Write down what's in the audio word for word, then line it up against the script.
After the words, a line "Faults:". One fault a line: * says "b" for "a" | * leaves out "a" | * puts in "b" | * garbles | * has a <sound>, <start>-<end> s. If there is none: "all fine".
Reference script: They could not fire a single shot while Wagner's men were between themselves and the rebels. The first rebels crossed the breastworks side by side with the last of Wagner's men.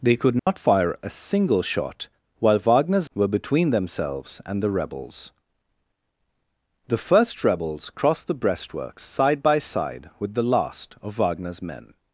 They could not fire a single shot while Wagner's were between themselves and the rebels. The first rebels crossed the breastworks side by side with the last of Wagner's men.
Faults:
* has a dropout, 0.4-0.5 s
* leaves out "men"